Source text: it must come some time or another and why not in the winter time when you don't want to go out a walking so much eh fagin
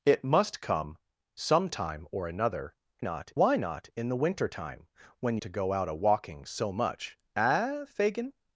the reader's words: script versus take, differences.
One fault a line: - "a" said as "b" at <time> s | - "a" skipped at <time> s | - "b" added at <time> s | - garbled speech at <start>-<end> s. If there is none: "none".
- "and" said as "not" at 3.0 s
- "you don't want" skipped at 5.4 s